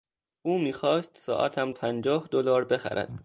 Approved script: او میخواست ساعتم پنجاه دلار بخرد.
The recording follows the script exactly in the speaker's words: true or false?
true